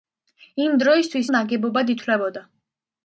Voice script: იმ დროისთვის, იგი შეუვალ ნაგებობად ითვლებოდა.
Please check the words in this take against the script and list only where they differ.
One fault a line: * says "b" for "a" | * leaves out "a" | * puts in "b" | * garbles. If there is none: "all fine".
* leaves out "იგი შეუვალ"